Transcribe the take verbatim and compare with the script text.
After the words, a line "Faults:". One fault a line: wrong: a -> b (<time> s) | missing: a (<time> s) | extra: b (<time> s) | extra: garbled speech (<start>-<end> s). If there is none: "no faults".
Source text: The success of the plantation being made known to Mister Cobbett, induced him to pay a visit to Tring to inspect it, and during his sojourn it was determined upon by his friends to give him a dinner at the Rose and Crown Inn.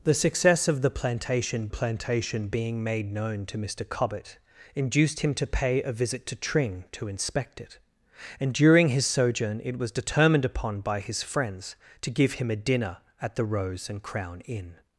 The success of the plantation plantation being made known to Mister Cobbett, induced him to pay a visit to Tring to inspect it, and during his sojourn it was determined upon by his friends to give him a dinner at the Rose and Crown Inn.
Faults:
extra: plantation (1.7 s)